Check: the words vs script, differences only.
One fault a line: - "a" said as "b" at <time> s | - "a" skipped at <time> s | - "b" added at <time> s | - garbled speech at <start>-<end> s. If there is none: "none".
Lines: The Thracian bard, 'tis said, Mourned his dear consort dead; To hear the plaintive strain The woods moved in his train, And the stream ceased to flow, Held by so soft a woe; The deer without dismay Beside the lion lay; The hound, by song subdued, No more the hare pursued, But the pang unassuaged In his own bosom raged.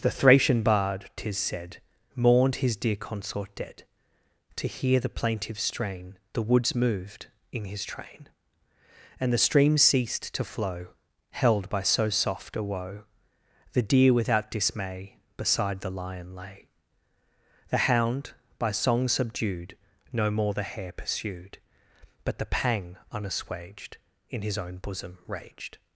none